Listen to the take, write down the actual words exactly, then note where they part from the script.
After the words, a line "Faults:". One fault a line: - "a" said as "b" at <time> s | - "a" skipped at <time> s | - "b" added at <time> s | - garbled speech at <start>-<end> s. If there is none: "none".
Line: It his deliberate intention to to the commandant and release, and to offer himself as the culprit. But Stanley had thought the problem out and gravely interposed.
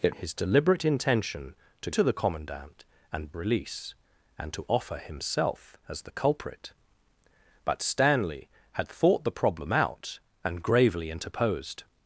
It his deliberate intention to to the commandant and release, and to offer himself as the culprit. But Stanley had thought the problem out and gravely interposed.
Faults:
none